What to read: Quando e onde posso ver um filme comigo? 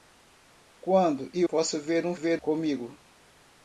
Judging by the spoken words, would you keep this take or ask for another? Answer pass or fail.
fail